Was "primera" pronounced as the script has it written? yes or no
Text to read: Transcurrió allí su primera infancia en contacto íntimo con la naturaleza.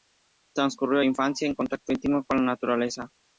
no